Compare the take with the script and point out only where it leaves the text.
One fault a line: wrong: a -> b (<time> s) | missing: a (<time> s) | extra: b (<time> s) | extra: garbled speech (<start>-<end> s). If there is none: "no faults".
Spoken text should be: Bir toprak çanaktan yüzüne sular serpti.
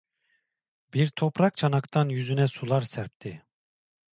no faults